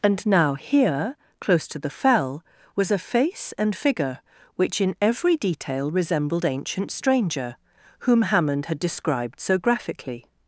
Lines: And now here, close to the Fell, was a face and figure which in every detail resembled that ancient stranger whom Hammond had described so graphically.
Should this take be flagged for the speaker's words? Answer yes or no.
yes